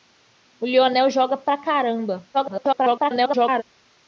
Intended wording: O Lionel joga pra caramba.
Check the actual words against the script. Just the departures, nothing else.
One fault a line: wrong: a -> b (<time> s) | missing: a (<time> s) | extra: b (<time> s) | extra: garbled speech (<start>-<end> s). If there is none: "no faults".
extra: garbled speech (2.3-3.6 s)